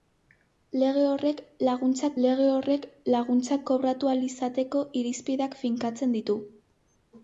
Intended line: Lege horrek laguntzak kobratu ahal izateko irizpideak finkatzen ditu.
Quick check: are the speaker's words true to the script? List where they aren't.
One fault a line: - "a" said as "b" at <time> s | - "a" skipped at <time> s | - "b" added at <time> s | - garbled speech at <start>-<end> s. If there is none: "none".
- "lege horrek laguntzak" added at 2.3 s